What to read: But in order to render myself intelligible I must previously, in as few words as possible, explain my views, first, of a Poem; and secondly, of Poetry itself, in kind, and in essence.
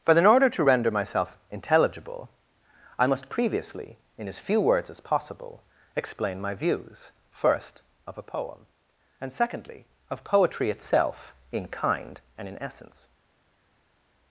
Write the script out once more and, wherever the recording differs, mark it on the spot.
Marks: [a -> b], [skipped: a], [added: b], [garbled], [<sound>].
But in order to render myself intelligible I must previously, in as few words as possible, explain my views, first, of a Poem; and secondly, of Poetry itself, in kind, and in essence.